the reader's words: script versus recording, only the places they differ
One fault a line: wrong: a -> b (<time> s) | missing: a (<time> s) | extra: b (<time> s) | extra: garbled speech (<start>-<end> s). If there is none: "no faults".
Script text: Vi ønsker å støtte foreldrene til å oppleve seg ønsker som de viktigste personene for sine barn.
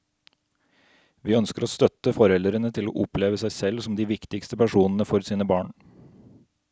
wrong: ønsker -> selv (3.5 s)